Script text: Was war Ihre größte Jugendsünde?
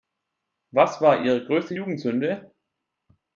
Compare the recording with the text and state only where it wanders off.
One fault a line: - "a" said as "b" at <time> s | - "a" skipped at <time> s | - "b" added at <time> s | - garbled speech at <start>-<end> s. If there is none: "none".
none